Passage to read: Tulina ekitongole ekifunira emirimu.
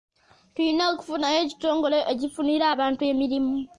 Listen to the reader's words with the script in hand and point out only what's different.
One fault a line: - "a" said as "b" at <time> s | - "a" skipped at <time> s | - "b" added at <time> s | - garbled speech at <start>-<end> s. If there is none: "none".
- "okufunayo" added at 0.9 s
- "abantu" added at 2.7 s